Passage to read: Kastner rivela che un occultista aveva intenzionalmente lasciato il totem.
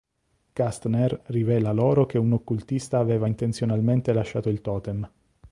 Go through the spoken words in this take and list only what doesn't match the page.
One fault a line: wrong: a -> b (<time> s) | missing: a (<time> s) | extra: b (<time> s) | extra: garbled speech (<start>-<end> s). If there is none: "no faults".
extra: loro (1.7 s)